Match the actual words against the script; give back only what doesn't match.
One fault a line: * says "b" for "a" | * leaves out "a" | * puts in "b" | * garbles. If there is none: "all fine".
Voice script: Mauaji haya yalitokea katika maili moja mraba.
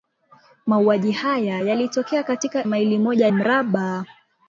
all fine